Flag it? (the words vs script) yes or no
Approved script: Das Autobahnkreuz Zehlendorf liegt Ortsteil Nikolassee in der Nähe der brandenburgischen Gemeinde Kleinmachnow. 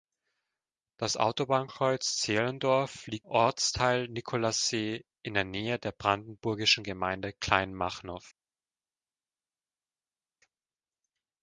no